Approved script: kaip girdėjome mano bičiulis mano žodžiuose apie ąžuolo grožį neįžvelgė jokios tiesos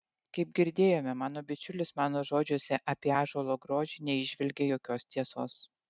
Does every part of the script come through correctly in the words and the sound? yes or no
yes